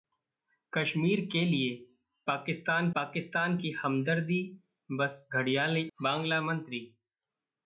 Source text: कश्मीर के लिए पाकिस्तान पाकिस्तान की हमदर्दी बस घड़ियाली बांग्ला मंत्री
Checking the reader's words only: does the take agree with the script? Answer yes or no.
yes